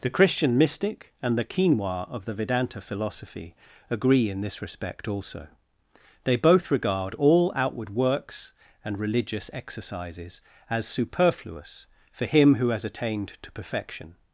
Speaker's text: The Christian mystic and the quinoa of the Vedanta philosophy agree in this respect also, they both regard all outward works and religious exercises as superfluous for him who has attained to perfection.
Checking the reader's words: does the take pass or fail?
pass